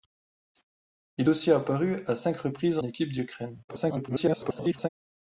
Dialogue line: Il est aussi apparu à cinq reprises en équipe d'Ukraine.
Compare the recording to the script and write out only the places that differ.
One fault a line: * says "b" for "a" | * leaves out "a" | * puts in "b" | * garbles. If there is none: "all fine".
* leaves out "est"
* leaves out "en"
* garbles